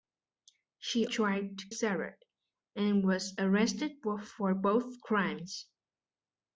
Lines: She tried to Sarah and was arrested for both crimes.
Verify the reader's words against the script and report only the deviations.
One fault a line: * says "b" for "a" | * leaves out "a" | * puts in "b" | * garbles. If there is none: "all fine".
all fine